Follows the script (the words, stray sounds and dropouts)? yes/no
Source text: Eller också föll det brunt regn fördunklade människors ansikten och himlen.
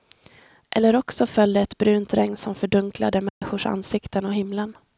no